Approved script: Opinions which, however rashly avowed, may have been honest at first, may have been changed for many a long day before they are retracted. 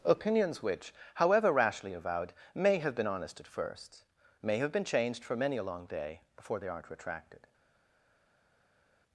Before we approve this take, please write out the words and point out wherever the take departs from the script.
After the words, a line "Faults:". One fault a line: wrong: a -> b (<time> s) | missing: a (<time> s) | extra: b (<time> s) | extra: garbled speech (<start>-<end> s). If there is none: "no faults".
Opinions which, however rashly avowed, may have been honest at first, may have been changed for many a long day before they aren't retracted.
Faults:
wrong: are -> aren't (6.7 s)